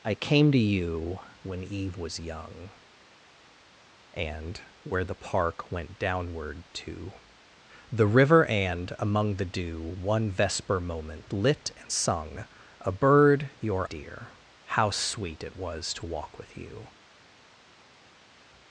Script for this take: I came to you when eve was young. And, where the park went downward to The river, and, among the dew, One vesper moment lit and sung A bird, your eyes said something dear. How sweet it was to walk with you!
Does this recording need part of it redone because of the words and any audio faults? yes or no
yes